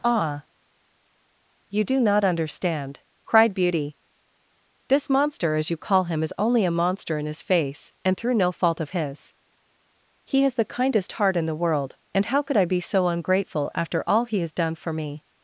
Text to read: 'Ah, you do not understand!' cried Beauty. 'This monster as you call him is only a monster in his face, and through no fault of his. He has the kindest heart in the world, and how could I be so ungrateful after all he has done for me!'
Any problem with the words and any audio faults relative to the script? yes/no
no